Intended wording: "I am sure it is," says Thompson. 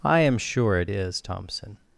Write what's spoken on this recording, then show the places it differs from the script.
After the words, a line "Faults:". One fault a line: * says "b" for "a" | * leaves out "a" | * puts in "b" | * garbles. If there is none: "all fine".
"I am sure it is," Thompson.
Faults:
* leaves out "says"